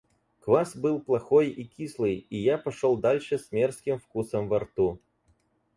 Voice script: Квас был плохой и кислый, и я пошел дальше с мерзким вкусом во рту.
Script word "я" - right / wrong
right